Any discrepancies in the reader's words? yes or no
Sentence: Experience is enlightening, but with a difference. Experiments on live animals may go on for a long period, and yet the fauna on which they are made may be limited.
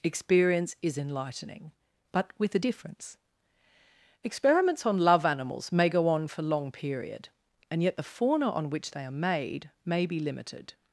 yes